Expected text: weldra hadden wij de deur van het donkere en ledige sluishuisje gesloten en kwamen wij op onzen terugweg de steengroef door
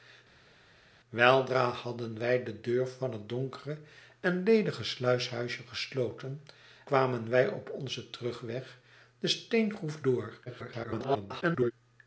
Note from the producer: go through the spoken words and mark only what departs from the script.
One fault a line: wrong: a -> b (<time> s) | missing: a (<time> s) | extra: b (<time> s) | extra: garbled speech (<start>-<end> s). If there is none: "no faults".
missing: en (6.4 s)
extra: garbled speech (10.5-11.7 s)